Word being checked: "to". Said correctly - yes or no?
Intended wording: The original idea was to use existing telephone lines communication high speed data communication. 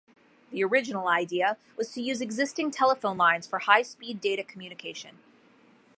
yes